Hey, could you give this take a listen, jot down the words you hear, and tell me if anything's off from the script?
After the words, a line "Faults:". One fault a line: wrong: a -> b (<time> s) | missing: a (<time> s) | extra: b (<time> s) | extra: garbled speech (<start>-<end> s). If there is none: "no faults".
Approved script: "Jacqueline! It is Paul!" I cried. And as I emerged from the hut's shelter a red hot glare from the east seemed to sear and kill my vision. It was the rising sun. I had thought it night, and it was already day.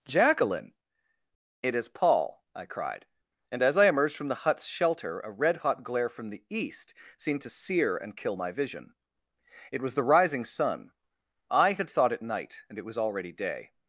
"Jacqueline! It is Paul!" I cried. And as I emerged from the hut's shelter a red hot glare from the east seemed to sear and kill my vision. It was the rising sun. I had thought it night, and it was already day.
Faults:
no faults